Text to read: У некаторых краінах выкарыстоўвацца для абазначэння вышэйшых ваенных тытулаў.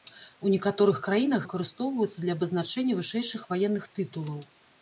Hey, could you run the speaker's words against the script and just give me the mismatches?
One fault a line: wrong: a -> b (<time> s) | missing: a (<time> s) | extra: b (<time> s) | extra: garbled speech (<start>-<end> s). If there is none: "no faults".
no faults